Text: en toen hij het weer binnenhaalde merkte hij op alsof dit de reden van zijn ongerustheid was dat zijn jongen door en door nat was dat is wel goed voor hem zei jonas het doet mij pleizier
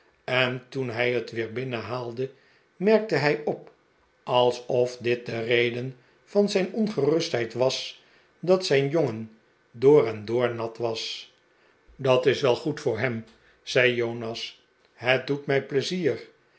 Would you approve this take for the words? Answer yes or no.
yes